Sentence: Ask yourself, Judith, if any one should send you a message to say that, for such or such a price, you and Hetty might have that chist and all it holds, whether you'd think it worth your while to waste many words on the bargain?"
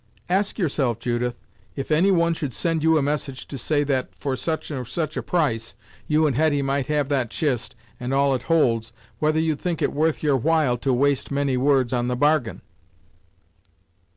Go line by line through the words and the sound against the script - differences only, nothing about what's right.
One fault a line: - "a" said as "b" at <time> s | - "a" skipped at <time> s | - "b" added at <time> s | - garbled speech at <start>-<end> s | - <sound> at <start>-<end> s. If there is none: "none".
none